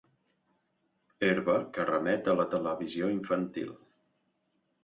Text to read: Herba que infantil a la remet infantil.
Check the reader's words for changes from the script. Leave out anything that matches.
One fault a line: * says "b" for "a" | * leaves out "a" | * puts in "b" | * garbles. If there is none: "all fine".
* says "remet" for "infantil"
* says "televisió" for "remet"